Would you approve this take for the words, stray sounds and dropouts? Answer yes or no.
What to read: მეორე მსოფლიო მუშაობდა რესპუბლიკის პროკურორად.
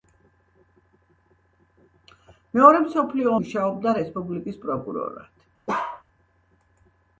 no